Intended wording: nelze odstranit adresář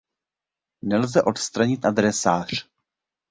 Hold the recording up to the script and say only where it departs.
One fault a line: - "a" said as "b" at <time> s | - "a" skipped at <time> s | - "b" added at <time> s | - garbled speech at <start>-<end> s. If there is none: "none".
none